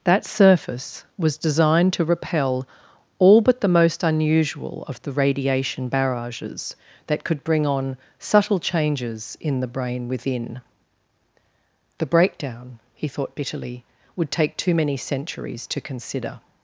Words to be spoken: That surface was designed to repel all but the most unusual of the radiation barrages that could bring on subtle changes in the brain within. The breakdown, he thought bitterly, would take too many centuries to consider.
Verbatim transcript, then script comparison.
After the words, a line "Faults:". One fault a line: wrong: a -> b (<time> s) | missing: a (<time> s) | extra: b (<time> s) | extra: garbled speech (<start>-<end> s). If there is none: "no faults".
That surface was designed to repel all but the most unusual of the radiation barrages that could bring on subtle changes in the brain within. The breakdown, he thought bitterly, would take too many centuries to consider.
Faults:
no faults